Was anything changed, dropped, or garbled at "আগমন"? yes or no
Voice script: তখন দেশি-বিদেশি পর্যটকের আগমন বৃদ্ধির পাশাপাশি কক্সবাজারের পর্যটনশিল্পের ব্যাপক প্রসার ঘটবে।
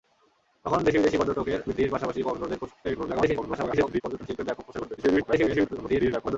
yes